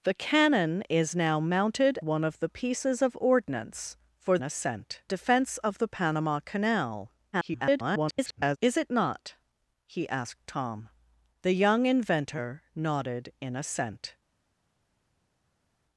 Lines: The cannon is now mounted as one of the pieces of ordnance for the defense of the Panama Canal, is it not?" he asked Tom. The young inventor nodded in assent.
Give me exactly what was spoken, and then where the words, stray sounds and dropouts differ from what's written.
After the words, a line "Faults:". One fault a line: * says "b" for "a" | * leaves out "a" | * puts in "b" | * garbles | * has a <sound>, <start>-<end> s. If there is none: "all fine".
The cannon is now mounted one of the pieces of ordnance for assent defense of the Panama Canal, [garbled] is it not?" he asked Tom. The young inventor nodded in assent.
Faults:
* leaves out "as"
* says "assent" for "the"
* garbles